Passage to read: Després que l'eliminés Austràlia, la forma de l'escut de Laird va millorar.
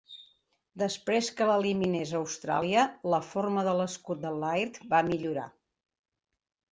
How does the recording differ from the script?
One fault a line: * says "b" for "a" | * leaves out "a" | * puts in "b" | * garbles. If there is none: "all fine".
all fine